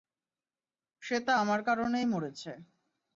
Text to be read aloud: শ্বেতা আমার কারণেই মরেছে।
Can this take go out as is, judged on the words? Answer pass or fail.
pass